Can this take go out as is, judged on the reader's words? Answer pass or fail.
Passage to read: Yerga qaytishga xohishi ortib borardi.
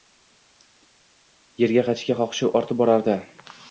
pass